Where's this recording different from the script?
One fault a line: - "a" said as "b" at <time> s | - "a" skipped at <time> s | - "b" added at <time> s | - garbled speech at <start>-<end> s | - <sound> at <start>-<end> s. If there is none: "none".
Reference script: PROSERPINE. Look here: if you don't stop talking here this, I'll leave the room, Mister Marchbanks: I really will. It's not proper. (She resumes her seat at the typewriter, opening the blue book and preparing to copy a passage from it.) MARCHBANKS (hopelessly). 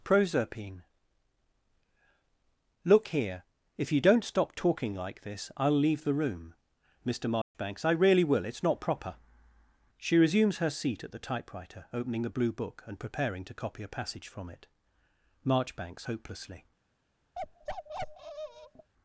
- "here" said as "like" at 5.0 s
- dropout at 7.4-7.5 s
- bark at 17.3-18.9 s